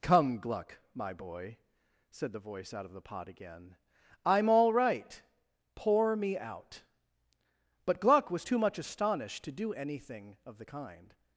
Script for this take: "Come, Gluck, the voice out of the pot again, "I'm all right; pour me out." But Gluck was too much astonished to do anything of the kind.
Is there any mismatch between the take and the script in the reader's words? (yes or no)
yes